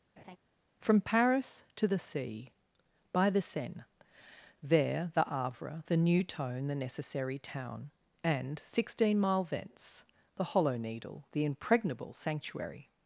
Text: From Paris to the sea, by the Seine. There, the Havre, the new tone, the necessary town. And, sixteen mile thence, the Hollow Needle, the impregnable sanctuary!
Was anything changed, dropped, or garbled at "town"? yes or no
no